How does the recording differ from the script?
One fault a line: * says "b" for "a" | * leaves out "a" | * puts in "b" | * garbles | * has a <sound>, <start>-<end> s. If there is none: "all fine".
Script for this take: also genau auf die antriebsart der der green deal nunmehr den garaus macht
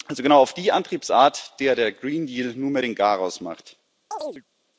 * has a chirp, 4.1-4.4 s